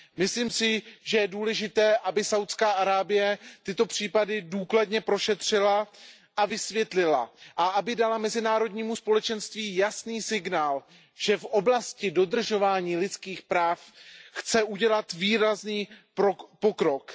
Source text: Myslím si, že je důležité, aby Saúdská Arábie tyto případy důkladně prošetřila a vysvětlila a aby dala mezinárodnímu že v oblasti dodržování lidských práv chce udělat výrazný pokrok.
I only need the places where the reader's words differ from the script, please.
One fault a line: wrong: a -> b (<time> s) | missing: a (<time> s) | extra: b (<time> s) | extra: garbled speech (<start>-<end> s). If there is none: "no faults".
extra: společenství jasný signál (8.9 s)